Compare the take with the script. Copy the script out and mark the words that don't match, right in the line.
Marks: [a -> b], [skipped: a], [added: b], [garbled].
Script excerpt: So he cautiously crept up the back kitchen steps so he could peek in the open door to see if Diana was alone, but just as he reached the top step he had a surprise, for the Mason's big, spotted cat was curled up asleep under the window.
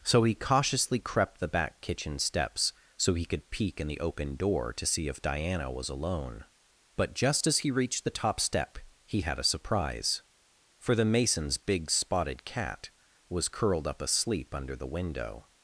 So he cautiously crept [skipped: up] the back kitchen steps so he could peek in the open door to see if Diana was alone, but just as he reached the top step he had a surprise, for the Mason's big, spotted cat was curled up asleep under the window.